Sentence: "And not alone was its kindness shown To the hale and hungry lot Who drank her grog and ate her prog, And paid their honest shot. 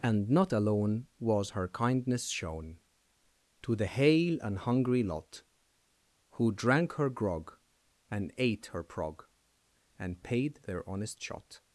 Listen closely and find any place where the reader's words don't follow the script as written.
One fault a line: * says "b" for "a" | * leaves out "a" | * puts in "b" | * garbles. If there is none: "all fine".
* says "her" for "its"